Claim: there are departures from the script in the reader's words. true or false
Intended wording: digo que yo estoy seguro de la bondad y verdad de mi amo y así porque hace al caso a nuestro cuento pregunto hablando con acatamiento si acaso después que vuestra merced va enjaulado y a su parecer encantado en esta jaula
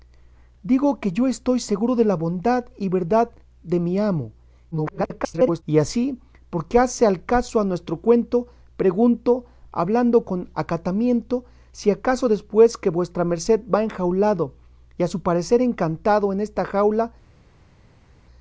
true